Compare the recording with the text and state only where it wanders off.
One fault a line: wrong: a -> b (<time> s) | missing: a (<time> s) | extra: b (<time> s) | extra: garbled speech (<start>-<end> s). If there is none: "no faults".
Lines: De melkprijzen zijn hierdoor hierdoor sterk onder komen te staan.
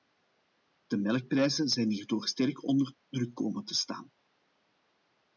missing: hierdoor (2.3 s)
extra: druk (3.1 s)